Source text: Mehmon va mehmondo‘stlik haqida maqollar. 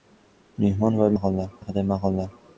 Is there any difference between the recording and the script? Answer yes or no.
yes